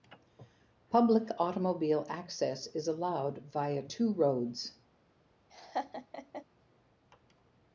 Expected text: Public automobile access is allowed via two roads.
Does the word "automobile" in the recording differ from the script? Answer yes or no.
no